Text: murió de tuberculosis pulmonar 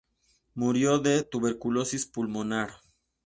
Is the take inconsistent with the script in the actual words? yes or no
no